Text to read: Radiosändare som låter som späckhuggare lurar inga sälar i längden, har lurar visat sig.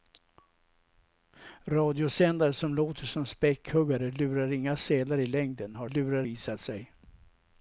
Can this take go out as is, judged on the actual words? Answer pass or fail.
pass